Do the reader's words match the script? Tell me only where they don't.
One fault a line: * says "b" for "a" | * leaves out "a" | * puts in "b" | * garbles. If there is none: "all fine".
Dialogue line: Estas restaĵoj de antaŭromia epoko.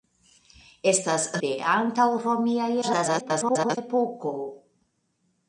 * leaves out "restaĵoj"
* garbles